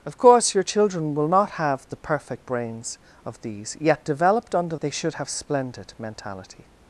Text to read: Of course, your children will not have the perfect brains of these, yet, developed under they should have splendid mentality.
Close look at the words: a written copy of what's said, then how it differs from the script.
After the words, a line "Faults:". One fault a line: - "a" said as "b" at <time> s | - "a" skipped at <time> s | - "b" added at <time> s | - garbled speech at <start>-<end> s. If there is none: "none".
Of course, your children will not have the perfect brains of these, yet, developed under they should have splendid mentality.
Faults:
none